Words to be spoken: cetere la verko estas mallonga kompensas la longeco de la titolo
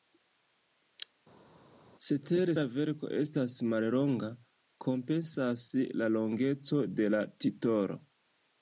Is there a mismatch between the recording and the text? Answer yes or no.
no